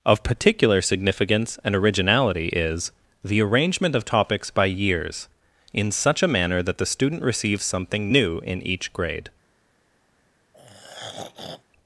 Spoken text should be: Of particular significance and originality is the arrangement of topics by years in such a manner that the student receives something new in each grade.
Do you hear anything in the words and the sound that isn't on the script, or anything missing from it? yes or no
yes